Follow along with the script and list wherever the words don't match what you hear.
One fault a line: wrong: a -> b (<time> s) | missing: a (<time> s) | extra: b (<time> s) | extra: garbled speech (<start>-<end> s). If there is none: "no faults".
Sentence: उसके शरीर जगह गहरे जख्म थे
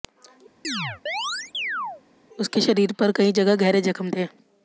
extra: पर कई (2.9 s)